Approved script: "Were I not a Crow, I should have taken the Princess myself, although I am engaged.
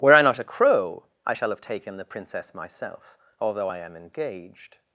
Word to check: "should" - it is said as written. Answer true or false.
false